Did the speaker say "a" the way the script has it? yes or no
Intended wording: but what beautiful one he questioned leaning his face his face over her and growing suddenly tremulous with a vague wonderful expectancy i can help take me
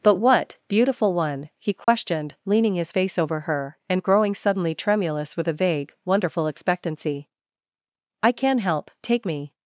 yes